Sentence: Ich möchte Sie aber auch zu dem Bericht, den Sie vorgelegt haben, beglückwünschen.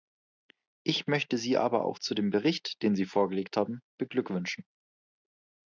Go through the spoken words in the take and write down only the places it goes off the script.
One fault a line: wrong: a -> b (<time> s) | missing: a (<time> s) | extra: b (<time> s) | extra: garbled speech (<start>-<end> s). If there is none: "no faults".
no faults